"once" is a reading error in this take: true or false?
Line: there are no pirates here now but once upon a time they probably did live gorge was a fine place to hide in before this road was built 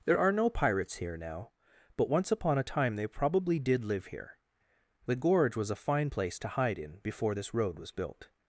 false